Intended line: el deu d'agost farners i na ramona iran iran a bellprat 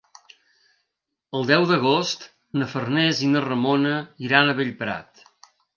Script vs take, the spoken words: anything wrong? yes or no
yes